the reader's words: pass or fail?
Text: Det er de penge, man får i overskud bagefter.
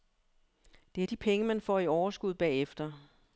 pass